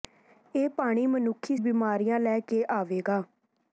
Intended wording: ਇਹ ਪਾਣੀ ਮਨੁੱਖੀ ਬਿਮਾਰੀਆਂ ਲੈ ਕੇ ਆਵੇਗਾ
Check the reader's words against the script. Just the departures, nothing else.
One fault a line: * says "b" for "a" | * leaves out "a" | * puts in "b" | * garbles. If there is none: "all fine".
all fine